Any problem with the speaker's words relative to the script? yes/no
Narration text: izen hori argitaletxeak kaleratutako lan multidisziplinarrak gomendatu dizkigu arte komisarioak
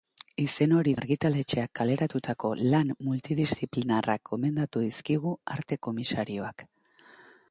no